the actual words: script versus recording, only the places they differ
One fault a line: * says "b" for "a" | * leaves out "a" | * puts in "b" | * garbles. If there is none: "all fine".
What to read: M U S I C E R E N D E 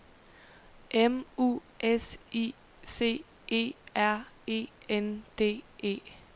all fine